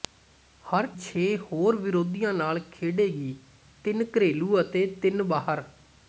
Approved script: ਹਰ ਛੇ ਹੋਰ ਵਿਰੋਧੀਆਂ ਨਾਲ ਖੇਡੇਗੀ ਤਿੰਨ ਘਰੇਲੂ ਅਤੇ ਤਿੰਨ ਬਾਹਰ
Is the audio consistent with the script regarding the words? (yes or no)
yes